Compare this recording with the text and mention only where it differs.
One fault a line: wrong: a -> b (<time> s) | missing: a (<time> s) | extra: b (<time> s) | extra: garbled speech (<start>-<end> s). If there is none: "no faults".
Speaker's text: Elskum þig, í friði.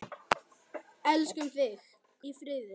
no faults